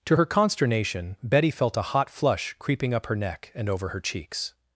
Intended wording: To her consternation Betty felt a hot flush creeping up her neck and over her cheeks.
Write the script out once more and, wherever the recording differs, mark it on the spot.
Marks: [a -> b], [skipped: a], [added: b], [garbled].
To her consternation Betty felt a hot flush creeping up her neck and over her cheeks.